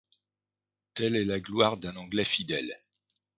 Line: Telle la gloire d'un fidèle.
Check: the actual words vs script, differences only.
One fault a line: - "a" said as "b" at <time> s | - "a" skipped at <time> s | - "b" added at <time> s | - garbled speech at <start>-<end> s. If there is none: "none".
- "est" added at 1.1 s
- "anglais" added at 1.9 s